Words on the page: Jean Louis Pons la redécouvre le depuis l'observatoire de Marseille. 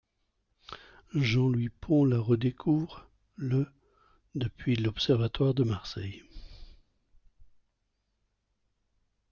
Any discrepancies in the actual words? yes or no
no